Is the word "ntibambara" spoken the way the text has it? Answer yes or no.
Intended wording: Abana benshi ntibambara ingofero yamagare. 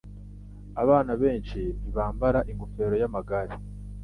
yes